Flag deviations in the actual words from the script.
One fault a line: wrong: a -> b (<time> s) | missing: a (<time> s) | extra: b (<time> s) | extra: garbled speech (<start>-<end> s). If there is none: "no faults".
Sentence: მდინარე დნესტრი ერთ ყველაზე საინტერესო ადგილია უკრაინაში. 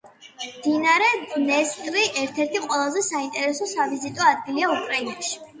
extra: ერთი (2.5 s)
extra: სავიზიტო (3.8 s)